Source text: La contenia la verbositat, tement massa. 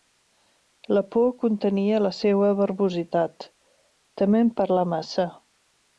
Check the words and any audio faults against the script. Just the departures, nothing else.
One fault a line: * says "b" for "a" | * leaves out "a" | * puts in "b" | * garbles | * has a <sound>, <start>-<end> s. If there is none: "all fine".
* puts in "por"
* puts in "seua"
* puts in "parlar"